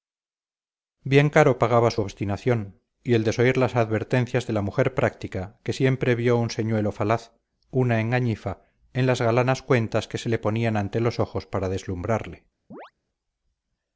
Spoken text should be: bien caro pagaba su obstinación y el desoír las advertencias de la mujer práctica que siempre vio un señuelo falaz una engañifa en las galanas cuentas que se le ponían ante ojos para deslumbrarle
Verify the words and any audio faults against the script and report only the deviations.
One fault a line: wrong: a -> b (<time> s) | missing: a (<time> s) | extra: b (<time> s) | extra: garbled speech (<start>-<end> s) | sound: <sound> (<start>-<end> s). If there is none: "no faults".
extra: los (11.0 s)
sound: chirp (12.7-12.9 s)